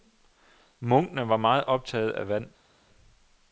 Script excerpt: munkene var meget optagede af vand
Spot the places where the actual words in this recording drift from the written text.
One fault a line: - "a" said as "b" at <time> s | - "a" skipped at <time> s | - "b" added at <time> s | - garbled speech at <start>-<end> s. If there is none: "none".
none